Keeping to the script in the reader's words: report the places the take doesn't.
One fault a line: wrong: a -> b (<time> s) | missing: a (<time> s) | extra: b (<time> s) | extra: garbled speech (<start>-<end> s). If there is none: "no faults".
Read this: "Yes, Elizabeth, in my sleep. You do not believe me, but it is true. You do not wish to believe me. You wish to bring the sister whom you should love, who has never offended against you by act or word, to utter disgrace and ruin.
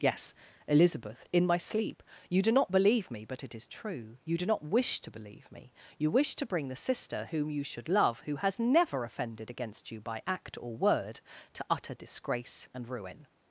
no faults